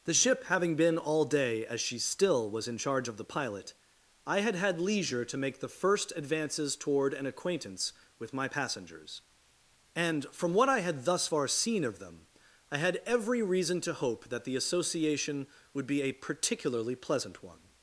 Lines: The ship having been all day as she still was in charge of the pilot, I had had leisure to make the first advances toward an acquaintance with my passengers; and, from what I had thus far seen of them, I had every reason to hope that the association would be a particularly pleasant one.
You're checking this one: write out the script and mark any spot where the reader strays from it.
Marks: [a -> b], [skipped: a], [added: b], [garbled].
The ship having been all day as she still was in charge of the pilot, I had had leisure to make the first advances toward an acquaintance with my passengers; and, from what I had thus far seen of them, I had every reason to hope that the association would be a particularly pleasant one.